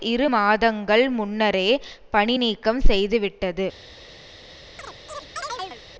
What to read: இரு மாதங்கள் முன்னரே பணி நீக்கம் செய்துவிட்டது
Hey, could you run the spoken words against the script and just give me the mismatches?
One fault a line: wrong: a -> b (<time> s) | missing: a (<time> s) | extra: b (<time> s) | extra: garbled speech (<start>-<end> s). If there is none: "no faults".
no faults